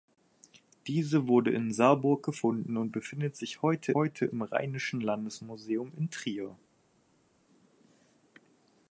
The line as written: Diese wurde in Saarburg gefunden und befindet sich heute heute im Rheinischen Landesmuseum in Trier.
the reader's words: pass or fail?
pass